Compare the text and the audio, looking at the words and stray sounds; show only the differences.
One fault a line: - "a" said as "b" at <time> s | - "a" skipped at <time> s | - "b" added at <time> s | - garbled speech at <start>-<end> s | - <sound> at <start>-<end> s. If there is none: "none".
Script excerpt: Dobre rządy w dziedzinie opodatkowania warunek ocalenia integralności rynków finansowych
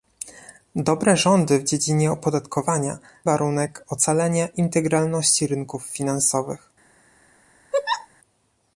- laugh at 7.7-8.1 s